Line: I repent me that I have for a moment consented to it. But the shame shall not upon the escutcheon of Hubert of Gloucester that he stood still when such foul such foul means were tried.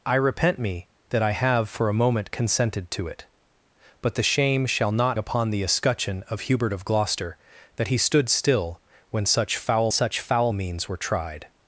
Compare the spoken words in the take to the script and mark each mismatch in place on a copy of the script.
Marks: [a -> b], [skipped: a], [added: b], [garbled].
I repent me that I have for a moment consented to it. But the shame shall not upon the escutcheon of Hubert of Gloucester that he stood still when such foul such foul means were tried.